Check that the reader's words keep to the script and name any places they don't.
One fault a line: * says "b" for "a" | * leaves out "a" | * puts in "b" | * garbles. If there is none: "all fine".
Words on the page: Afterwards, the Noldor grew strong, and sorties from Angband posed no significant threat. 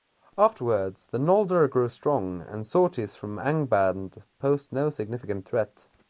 all fine